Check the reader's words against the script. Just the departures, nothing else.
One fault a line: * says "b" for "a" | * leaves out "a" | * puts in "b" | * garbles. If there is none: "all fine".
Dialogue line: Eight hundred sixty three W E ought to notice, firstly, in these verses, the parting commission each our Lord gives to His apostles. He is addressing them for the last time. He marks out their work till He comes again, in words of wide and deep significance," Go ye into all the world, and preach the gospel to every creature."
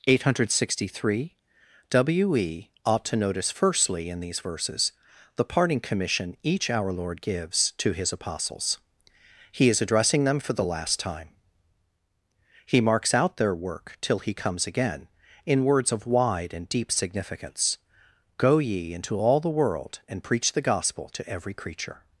all fine